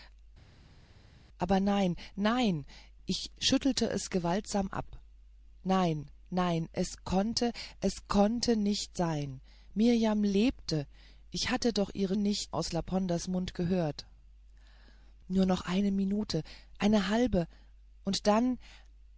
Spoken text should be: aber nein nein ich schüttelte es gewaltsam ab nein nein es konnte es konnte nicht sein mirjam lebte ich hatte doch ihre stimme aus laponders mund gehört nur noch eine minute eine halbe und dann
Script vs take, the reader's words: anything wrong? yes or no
yes